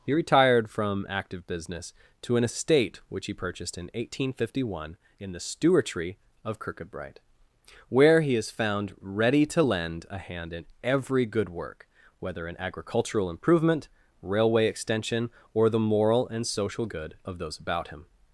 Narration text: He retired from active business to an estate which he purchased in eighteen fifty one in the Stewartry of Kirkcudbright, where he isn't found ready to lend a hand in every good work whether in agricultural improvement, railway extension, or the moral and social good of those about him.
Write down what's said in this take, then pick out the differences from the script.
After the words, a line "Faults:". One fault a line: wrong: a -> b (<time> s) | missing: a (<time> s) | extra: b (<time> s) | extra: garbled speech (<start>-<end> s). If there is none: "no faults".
He retired from active business to an estate which he purchased in eighteen fifty one in the Stewartry of Kirkcudbright, where he is found ready to lend a hand in every good work whether in agricultural improvement, railway extension, or the moral and social good of those about him.
Faults:
wrong: isn't -> is (8.3 s)